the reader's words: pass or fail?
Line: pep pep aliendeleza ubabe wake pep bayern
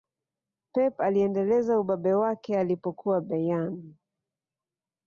fail